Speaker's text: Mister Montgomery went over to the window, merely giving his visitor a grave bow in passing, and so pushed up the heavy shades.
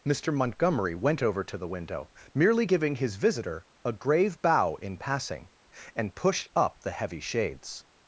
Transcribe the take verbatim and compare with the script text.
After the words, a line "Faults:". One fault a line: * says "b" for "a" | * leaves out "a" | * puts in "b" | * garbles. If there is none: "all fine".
Mister Montgomery went over to the window, merely giving his visitor a grave bow in passing, and pushed up the heavy shades.
Faults:
* leaves out "so"